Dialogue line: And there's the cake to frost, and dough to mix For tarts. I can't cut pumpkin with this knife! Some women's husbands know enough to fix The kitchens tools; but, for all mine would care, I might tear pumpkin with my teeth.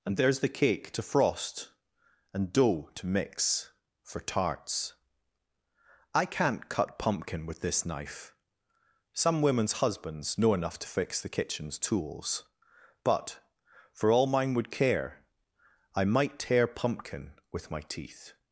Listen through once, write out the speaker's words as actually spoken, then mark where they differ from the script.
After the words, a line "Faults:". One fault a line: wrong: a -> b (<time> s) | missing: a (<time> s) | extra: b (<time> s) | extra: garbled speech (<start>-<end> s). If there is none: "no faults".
And there's the cake to frost, and dough to mix For tarts. I can't cut pumpkin with this knife! Some women's husbands know enough to fix The kitchens tools; but, for all mine would care, I might tear pumpkin with my teeth.
Faults:
no faults